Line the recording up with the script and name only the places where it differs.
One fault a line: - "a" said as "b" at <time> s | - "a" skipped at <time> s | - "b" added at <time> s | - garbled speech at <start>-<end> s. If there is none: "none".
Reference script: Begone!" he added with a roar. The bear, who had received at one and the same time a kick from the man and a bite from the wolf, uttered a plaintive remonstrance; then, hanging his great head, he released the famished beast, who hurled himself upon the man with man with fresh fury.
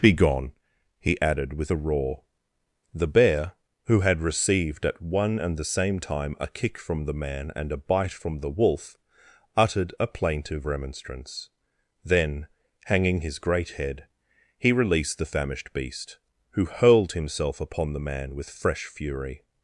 - "man with" skipped at 18.5 s